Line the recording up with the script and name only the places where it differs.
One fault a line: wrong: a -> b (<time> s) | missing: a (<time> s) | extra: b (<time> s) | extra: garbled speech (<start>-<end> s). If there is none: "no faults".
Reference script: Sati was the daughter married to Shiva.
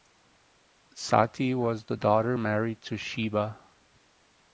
no faults